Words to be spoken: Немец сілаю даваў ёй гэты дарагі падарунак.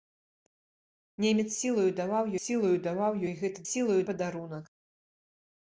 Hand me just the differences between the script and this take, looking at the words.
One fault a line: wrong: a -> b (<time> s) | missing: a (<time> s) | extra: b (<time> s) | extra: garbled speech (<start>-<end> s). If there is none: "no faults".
extra: сілаю даваў (2.5 s)
wrong: дарагі -> сілаю (3.7 s)